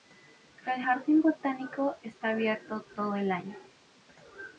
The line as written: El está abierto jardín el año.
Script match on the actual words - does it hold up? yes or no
no